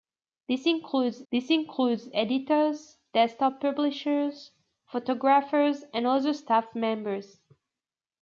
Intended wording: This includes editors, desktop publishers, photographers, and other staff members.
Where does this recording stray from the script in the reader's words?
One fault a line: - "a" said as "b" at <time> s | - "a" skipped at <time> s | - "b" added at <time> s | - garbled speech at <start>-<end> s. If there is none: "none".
- "this includes" added at 1.3 s